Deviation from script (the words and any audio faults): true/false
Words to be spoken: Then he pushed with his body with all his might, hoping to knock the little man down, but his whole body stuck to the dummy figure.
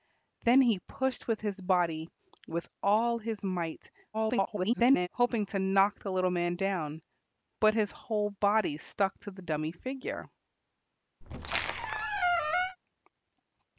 true